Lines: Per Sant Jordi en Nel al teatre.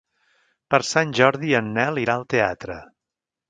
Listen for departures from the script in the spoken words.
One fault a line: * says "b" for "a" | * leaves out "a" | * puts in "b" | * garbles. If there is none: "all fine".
* puts in "irà"